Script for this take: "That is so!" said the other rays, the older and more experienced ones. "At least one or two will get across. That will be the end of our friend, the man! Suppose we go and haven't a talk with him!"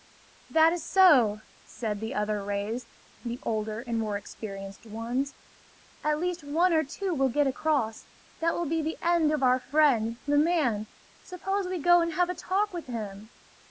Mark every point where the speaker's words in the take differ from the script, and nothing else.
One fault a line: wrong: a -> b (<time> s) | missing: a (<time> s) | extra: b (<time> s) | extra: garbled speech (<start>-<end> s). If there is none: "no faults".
wrong: haven't -> have (12.1 s)